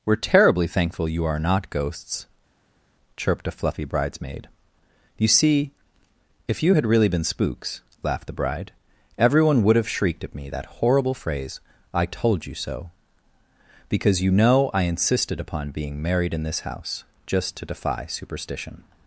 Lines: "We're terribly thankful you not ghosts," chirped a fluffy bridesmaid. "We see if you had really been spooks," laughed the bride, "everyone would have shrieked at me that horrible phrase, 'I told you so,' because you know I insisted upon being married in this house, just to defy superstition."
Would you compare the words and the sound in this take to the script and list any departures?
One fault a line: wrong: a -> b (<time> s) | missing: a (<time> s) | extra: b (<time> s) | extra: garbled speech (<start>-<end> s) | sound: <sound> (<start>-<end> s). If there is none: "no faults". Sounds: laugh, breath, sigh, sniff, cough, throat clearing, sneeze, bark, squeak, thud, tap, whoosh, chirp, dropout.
extra: are (1.2 s)
wrong: We -> You (5.2 s)